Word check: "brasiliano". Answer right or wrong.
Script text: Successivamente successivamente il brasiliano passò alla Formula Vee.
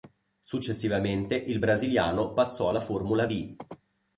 right